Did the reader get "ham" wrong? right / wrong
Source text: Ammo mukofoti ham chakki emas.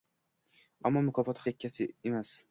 wrong